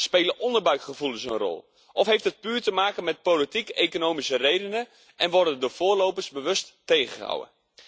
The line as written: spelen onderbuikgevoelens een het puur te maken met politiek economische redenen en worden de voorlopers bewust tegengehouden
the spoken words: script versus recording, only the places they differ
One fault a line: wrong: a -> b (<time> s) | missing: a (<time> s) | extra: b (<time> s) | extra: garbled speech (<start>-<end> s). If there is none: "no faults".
extra: rol of heeft (1.4 s)